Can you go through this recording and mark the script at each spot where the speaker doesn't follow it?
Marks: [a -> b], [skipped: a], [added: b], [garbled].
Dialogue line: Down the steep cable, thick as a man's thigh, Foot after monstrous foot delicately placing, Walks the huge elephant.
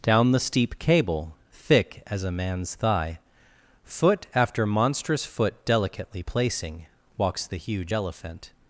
Down the steep cable, thick as a man's thigh, Foot after monstrous foot delicately placing, Walks the huge elephant.